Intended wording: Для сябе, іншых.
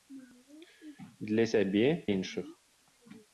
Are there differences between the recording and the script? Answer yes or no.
no